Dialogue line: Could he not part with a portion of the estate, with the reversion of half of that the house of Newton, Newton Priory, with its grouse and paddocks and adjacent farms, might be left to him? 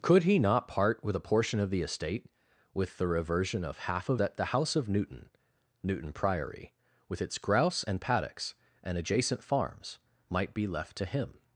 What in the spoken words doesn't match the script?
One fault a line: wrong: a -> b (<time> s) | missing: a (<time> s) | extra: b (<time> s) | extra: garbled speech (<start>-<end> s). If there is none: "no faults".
no faults